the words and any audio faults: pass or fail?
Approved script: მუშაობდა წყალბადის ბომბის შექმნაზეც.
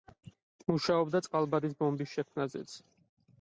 pass